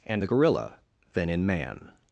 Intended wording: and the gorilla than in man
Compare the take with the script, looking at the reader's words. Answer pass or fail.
pass